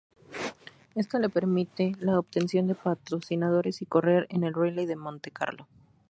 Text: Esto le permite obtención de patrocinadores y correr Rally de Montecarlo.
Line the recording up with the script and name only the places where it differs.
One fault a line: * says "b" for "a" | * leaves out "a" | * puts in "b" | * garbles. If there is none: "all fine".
* puts in "la"
* puts in "en el"